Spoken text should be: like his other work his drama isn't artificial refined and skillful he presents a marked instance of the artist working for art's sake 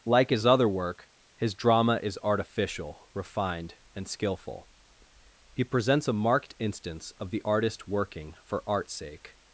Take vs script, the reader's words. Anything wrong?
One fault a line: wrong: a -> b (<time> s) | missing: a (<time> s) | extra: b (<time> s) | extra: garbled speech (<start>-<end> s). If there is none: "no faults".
wrong: isn't -> is (2.0 s)